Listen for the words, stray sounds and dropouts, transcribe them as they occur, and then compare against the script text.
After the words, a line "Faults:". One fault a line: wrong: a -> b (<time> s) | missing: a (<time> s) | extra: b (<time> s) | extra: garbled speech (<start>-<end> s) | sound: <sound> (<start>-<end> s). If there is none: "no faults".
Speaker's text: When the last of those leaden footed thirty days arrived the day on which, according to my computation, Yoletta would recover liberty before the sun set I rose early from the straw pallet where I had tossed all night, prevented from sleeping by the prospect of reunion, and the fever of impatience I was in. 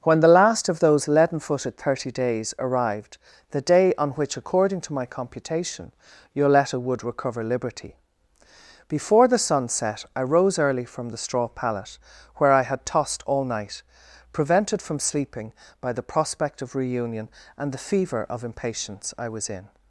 When the last of those leaden footed thirty days arrived the day on which, according to my computation, Yoletta would recover liberty before the sun set I rose early from the straw pallet where I had tossed all night, prevented from sleeping by the prospect of reunion, and the fever of impatience I was in.
Faults:
no faults